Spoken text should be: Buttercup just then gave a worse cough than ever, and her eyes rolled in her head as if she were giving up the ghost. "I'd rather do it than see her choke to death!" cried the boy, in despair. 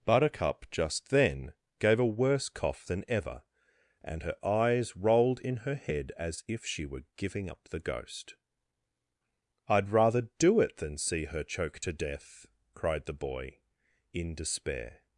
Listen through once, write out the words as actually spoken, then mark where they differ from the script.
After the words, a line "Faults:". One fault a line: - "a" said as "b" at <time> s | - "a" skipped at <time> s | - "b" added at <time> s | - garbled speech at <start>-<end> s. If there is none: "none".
Buttercup just then gave a worse cough than ever, and her eyes rolled in her head as if she were giving up the ghost. "I'd rather do it than see her choke to death!" cried the boy, in despair.
Faults:
none